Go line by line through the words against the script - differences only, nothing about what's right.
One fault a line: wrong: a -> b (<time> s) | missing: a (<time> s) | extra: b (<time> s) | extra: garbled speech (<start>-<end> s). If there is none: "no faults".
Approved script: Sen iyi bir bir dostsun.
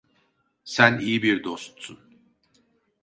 missing: bir (1.4 s)